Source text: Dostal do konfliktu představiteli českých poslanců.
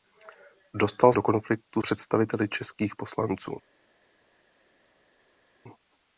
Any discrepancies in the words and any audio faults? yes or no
no